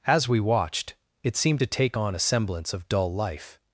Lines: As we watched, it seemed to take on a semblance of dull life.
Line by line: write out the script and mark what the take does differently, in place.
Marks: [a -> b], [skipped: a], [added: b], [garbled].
As we watched, it seemed to take on a semblance of dull life.